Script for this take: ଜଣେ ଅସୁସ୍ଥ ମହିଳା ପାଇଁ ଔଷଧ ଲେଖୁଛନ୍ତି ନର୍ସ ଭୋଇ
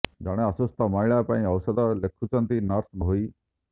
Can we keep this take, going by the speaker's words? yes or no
yes